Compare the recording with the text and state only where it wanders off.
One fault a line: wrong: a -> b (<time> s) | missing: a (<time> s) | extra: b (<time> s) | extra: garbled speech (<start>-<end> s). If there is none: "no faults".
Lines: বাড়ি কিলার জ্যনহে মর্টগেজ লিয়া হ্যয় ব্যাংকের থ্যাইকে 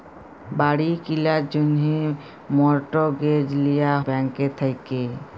missing: হ্যয় (3.9 s)